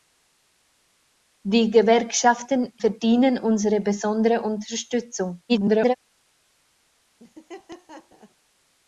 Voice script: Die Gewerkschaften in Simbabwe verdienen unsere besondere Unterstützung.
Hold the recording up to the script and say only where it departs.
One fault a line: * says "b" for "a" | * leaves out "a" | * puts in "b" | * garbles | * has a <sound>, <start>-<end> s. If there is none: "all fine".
* leaves out "in Simbabwe"
* garbles
* has a laugh, 7.2-8.4 s